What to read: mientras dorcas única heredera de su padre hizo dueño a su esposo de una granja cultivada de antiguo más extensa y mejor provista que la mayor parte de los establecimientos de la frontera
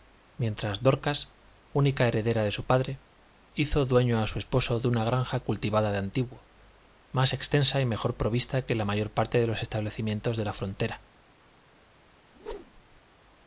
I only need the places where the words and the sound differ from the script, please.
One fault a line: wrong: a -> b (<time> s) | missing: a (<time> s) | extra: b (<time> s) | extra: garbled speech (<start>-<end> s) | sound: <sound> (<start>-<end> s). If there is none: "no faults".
sound: whoosh (12.3-13.0 s)